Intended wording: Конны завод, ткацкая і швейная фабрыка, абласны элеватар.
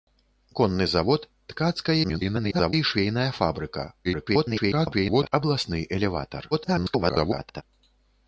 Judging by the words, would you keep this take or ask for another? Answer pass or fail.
fail